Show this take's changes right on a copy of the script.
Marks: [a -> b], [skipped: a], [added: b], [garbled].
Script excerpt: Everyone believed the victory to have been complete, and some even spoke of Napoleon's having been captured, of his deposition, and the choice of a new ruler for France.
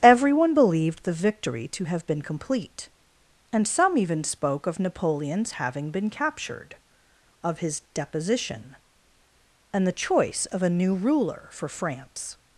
Everyone believed the victory to have been complete, and some even spoke of Napoleon's having been captured, of his deposition, and the choice of a new ruler for France.